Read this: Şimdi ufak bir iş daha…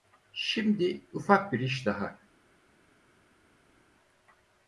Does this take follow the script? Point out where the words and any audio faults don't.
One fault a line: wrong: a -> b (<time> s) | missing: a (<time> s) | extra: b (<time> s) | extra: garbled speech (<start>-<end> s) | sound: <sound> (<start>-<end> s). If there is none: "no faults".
no faults